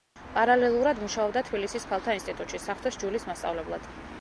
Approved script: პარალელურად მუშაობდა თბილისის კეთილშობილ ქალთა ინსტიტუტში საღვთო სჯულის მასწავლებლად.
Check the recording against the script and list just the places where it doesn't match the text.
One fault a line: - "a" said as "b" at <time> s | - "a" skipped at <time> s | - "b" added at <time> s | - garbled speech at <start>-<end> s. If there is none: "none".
- "კეთილშობილ" skipped at 1.9 s